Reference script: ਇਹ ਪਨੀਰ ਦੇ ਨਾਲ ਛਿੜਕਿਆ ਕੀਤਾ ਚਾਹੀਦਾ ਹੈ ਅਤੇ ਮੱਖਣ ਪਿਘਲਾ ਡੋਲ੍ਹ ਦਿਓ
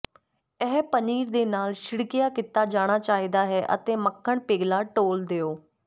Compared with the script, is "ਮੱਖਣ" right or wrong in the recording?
right